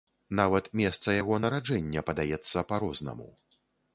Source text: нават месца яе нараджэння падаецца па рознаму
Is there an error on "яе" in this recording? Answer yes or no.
yes